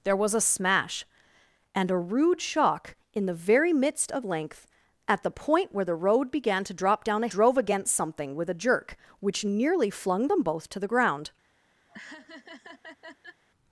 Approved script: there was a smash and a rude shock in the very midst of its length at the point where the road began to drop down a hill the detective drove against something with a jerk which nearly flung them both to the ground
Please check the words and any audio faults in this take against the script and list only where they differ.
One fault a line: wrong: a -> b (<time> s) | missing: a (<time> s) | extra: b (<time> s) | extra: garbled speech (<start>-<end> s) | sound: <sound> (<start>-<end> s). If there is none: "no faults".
missing: its (4.2 s)
missing: hill the detective (7.3 s)
sound: laugh (11.9-13.4 s)